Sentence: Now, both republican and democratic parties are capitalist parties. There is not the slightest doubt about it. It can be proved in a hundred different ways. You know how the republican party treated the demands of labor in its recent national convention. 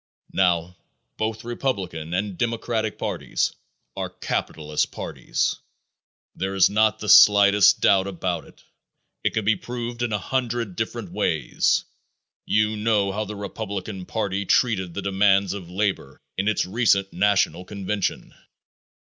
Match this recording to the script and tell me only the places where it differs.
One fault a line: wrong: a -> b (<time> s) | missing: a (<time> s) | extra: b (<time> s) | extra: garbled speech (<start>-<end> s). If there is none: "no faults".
no faults